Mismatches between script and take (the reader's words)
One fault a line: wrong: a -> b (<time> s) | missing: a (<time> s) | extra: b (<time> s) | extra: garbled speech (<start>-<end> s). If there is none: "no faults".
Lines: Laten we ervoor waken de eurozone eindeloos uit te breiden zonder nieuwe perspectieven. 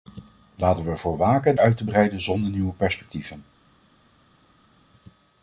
missing: de eurozone eindeloos (1.6 s)